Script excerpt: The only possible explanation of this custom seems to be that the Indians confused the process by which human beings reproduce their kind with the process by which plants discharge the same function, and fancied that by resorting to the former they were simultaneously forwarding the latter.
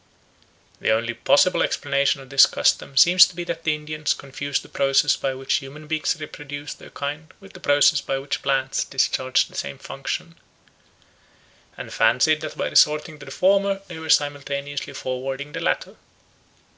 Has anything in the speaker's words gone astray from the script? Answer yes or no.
no